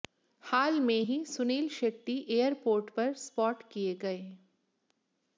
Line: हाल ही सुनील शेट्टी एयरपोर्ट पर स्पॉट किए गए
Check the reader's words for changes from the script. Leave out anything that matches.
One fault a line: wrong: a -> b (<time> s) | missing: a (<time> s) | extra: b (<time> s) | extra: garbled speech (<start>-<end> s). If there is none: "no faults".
extra: में (0.8 s)